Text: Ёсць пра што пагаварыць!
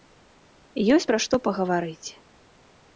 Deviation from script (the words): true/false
false